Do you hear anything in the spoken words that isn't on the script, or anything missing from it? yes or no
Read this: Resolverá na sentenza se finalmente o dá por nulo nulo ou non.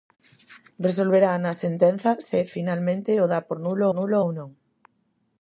no